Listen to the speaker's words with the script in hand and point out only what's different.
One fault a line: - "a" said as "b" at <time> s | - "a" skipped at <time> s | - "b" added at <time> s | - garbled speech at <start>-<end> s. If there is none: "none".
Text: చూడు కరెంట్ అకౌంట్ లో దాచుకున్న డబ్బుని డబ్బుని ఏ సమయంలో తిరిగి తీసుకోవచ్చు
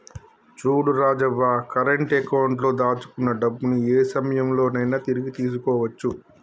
- "రాజవ్వ" added at 1.0 s
- "డబ్బుని" skipped at 3.8 s
- "నైనా" added at 4.8 s